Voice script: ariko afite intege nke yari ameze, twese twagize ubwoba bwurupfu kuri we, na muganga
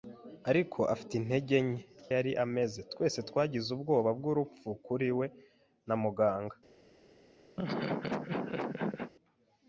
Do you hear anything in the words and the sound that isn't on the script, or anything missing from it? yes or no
yes